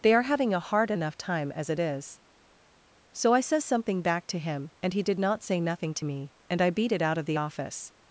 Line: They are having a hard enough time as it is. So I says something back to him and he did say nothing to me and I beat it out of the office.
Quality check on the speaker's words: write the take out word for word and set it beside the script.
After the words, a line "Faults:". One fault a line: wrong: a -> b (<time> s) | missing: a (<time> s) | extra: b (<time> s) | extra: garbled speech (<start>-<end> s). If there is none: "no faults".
They are having a hard enough time as it is. So I says something back to him and he did not say nothing to me and I beat it out of the office.
Faults:
extra: not (5.2 s)